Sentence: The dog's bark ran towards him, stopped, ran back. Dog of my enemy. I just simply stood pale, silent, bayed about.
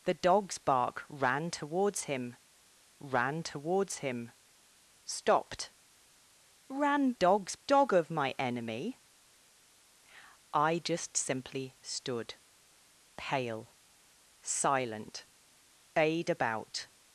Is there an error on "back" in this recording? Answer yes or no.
yes